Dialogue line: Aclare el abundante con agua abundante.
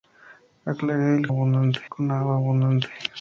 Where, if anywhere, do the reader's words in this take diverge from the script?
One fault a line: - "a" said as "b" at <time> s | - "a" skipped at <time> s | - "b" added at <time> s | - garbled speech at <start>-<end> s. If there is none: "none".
none